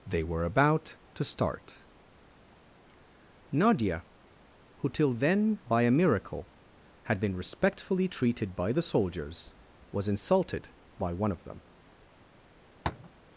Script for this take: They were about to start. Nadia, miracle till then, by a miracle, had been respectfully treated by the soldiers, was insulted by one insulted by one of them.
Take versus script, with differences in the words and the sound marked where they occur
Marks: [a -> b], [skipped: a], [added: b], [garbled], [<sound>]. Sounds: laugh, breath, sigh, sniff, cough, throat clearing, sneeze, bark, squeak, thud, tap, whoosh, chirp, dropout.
They were about to start. Nadia, [miracle -> who] till then, by a miracle, had been respectfully treated by the soldiers, was insulted by one [skipped: insulted by one] of them. [tap]